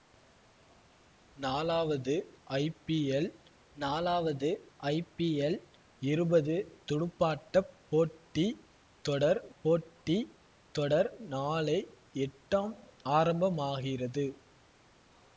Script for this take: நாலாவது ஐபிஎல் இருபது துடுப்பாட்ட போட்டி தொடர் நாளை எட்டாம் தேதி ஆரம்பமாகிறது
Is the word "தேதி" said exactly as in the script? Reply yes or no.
no